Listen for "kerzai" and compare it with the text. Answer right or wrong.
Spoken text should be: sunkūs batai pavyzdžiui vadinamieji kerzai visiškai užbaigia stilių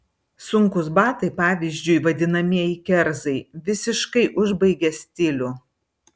right